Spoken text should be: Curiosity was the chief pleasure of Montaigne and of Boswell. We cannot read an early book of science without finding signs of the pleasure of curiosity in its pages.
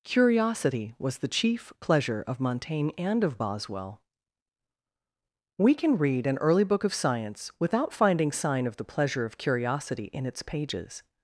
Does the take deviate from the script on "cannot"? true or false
true